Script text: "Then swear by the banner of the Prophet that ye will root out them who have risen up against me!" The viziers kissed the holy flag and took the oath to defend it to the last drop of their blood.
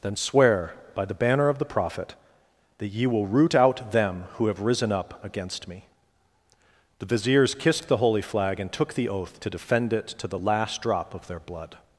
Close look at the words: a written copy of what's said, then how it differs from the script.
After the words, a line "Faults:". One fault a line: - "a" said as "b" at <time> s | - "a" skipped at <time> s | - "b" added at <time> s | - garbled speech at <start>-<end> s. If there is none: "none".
"Then swear by the banner of the Prophet that ye will root out them who have risen up against me!" The viziers kissed the holy flag and took the oath to defend it to the last drop of their blood.
Faults:
none